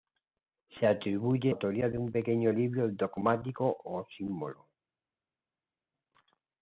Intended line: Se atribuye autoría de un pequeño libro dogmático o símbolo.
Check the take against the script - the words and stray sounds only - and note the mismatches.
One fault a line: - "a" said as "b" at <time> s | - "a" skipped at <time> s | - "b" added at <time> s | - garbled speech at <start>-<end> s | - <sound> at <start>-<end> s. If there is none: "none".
none